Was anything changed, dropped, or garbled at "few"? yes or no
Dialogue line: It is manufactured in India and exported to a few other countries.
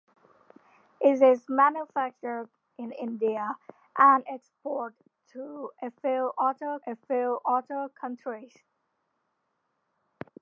no